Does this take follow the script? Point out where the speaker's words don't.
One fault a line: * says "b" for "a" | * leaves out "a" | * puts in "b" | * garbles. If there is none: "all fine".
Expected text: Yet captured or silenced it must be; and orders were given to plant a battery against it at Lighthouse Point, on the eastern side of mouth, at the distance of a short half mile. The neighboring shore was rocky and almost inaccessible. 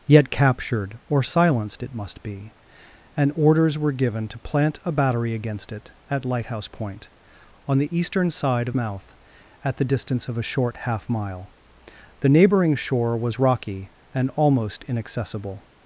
all fine